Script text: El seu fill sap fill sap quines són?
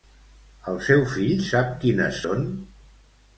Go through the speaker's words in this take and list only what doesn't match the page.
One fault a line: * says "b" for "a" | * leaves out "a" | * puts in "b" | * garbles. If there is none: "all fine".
* leaves out "fill sap"